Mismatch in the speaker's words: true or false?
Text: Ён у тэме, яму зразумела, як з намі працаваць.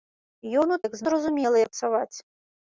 true